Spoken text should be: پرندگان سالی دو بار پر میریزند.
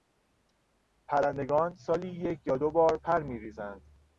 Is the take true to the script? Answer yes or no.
no